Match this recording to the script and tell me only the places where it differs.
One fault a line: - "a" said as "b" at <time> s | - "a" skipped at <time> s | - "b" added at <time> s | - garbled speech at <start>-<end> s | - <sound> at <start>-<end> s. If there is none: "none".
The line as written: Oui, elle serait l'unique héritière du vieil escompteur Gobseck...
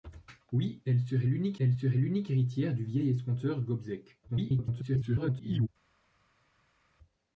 - "elle serait l'unique" added at 1.6 s
- garbled speech at 4.3-5.7 s